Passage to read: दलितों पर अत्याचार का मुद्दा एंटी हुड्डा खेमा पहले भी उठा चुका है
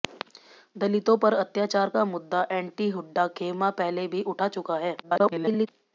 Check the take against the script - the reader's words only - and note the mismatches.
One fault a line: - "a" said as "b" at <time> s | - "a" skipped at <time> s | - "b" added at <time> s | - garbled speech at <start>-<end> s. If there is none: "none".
- garbled speech at 5.0-5.7 s